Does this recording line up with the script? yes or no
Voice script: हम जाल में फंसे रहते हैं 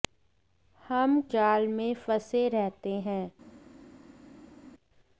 yes